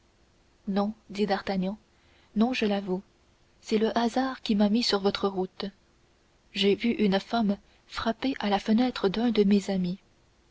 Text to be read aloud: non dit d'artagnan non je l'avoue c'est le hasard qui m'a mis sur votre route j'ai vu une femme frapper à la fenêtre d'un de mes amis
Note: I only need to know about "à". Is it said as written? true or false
true